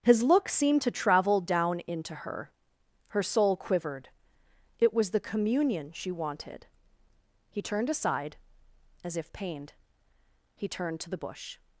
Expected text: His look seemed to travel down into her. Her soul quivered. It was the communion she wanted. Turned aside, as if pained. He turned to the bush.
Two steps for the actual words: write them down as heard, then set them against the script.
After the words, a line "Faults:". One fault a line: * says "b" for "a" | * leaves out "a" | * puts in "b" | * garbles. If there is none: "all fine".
His look seemed to travel down into her. Her soul quivered. It was the communion she wanted. He turned aside, as if pained. He turned to the bush.
Faults:
* puts in "He"